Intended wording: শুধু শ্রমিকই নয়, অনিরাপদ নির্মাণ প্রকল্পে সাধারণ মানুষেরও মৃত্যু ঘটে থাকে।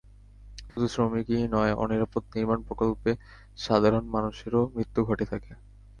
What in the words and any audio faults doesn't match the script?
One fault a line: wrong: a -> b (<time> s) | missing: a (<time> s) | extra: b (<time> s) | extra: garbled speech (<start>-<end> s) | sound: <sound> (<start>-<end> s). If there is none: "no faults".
sound: dropout (0.7-0.8 s)